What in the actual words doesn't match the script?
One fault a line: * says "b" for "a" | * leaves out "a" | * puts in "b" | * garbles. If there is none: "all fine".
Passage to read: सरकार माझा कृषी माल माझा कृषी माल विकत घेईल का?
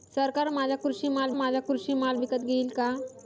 all fine